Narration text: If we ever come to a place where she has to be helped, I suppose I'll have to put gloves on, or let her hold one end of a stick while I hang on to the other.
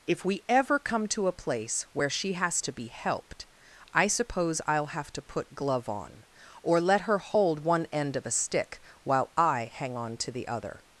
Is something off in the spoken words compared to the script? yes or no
yes